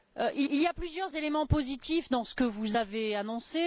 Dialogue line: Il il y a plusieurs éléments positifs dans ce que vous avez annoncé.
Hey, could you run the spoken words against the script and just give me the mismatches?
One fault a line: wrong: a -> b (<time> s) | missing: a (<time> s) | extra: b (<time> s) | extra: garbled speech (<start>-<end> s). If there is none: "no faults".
no faults